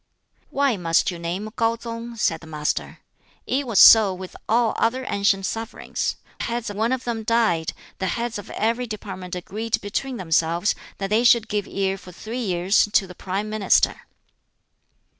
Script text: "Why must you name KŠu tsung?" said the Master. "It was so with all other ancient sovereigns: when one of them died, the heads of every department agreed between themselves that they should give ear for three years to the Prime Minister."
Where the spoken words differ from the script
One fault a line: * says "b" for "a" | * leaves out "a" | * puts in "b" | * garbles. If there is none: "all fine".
* says "heads" for "when"